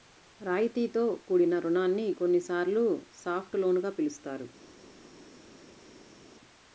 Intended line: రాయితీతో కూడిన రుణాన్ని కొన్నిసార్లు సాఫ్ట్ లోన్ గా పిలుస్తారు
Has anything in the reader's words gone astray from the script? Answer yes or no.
no